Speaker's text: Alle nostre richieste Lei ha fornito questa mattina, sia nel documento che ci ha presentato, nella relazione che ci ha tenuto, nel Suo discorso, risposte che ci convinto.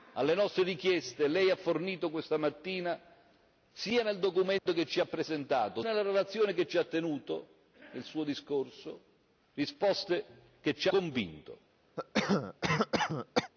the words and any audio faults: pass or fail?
fail